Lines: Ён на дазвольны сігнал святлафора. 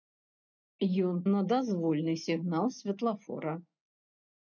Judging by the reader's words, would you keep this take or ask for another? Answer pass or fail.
pass